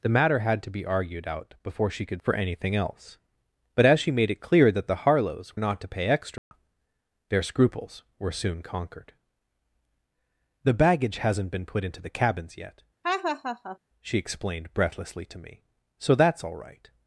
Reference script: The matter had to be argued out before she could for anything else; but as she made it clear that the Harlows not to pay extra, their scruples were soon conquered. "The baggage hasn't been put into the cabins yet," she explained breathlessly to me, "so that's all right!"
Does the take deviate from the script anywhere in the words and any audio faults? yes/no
yes